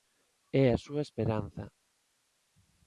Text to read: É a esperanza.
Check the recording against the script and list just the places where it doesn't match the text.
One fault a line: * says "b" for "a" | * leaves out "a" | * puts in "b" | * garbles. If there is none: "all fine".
* puts in "súa"